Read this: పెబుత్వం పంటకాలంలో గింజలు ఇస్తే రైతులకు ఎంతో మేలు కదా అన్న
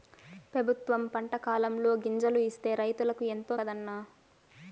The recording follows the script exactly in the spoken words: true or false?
false